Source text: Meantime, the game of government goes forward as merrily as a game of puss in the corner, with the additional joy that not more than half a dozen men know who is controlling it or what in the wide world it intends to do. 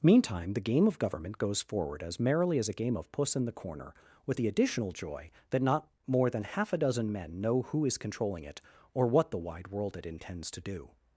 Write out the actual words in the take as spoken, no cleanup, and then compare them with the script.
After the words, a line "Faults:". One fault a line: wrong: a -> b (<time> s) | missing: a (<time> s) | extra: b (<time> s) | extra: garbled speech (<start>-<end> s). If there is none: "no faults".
Meantime, the game of government goes forward as merrily as a game of puss in the corner, with the additional joy that not more than half a dozen men know who is controlling it or what the wide world it intends to do.
Faults:
missing: in (9.3 s)